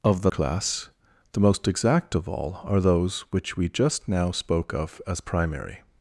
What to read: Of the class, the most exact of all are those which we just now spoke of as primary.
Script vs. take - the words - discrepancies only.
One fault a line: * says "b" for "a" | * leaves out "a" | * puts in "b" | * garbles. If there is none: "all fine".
all fine